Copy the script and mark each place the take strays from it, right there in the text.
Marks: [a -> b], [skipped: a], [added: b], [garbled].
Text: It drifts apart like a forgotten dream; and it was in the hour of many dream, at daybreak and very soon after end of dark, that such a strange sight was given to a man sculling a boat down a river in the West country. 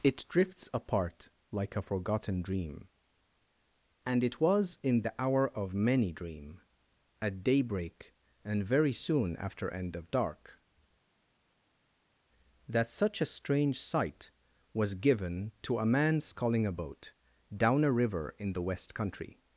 It drifts apart like a forgotten dream; and it was in the hour of many dream, at daybreak and very soon after end of dark, that such a strange sight was given to a man sculling a boat down a river in the West country.